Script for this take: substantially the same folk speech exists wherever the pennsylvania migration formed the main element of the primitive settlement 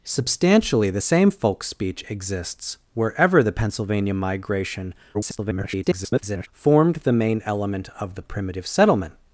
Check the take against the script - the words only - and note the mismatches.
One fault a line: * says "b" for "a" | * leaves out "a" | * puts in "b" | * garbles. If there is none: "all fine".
* garbles